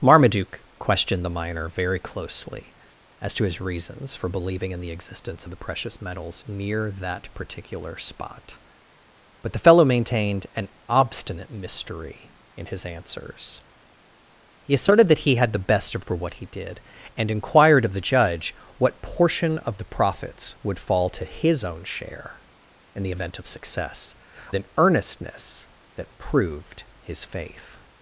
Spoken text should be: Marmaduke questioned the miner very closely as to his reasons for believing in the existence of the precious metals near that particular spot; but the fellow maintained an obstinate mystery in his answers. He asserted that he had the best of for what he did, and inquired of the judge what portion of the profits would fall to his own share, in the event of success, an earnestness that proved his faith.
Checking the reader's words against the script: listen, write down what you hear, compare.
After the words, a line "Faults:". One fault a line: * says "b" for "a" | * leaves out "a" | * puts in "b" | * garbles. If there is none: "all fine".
Marmaduke questioned the miner very closely as to his reasons for believing in the existence of the precious metals near that particular spot; but the fellow maintained an obstinate mystery in his answers. He asserted that he had the best of for what he did, and inquired of the judge what portion of the profits would fall to his own share, in the event of success, an earnestness that proved his faith.
Faults:
all fine